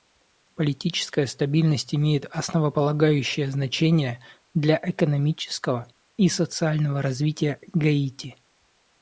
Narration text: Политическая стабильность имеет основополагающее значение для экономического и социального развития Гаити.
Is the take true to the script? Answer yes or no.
yes